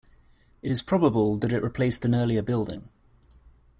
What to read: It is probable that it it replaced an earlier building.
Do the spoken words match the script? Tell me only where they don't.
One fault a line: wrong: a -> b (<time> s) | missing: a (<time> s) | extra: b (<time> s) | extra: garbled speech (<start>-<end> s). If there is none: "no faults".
missing: it (1.7 s)